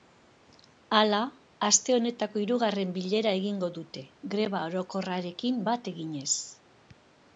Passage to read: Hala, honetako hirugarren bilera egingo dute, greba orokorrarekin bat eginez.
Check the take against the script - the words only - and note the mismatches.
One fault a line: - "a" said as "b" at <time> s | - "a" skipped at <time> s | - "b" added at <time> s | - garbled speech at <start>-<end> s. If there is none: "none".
- "aste" added at 1.7 s